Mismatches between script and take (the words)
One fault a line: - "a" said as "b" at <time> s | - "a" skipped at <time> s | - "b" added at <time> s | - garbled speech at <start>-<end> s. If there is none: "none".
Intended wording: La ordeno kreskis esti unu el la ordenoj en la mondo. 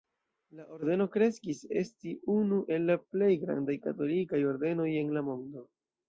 - "plej grandaj katolikaj" added at 3.2 s